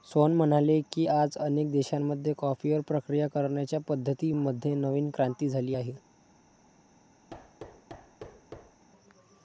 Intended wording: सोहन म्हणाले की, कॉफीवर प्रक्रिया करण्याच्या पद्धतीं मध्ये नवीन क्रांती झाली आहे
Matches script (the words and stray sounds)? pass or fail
fail